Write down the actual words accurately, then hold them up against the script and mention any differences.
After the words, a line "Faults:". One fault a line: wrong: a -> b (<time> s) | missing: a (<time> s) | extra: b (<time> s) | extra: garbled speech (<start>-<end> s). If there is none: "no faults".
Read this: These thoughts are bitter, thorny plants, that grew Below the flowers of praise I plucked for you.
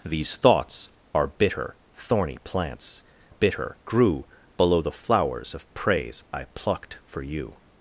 These thoughts are bitter, thorny plants, bitter grew Below the flowers of praise I plucked for you.
Faults:
wrong: that -> bitter (3.3 s)